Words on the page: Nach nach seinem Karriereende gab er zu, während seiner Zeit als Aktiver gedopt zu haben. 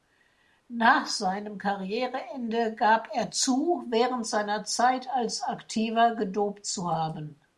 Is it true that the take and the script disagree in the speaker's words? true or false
true